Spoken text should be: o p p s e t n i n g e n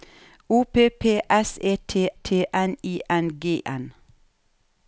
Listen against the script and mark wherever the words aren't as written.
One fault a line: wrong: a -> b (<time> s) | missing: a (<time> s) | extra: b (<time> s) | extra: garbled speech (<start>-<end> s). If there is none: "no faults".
extra: t (2.1 s)
missing: e (3.6 s)